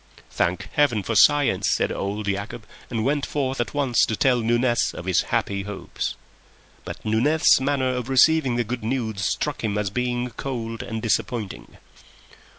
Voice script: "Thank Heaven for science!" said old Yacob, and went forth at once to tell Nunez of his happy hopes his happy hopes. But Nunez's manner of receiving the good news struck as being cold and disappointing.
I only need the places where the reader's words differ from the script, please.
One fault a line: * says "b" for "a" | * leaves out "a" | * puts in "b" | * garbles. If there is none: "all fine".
* leaves out "his happy hopes"
* puts in "him"